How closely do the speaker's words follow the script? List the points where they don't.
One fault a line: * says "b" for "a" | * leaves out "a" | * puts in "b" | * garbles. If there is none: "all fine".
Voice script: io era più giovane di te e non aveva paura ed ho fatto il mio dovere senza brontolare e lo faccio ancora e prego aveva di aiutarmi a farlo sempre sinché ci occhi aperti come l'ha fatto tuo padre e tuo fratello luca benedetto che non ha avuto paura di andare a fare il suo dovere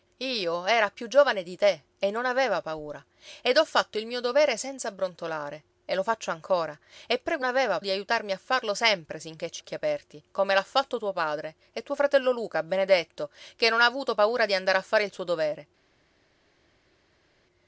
all fine